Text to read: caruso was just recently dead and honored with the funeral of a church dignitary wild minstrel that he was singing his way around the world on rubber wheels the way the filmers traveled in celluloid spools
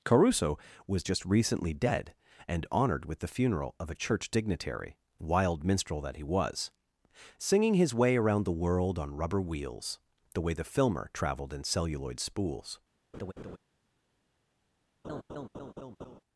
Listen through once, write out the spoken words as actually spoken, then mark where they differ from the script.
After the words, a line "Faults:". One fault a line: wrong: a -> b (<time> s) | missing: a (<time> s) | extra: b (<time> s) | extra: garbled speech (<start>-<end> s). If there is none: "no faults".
caruso was just recently dead and honored with the funeral of a church dignitary wild minstrel that he was singing his way around the world on rubber wheels the way the filmer traveled in celluloid spools
Faults:
wrong: filmers -> filmer (10.6 s)